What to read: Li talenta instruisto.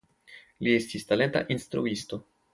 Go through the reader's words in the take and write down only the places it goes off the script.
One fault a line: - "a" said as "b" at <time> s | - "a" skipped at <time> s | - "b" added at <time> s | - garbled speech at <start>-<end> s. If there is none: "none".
- "estis" added at 0.8 s